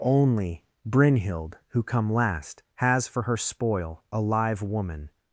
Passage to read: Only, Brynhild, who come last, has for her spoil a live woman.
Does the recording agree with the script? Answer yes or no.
yes